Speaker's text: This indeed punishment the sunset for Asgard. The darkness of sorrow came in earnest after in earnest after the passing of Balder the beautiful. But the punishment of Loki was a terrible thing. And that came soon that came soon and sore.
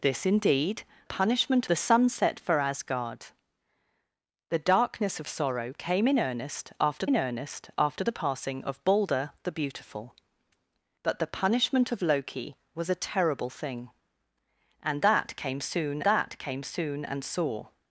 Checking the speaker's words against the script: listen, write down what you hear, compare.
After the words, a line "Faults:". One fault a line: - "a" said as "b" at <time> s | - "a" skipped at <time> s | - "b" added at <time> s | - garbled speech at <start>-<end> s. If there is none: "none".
This indeed punishment the sunset for Asgard. The darkness of sorrow came in earnest after in earnest after the passing of Balder the beautiful. But the punishment of Loki was a terrible thing. And that came soon that came soon and sore.
Faults:
none